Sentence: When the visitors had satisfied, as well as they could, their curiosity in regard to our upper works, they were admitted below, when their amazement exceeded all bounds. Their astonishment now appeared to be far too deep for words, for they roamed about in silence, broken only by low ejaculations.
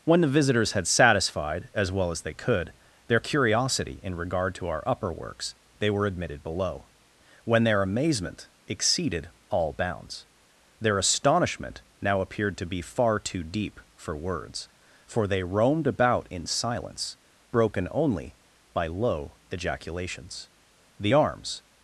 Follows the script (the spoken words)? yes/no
no